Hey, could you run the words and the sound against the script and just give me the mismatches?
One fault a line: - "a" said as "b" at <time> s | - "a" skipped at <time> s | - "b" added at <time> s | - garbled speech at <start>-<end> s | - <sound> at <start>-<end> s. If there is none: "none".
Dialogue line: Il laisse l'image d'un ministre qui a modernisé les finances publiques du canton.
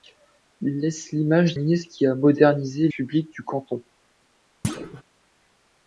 - "d'un" skipped at 1.5 s
- "les finances" skipped at 2.9 s
- thud at 4.6-5.0 s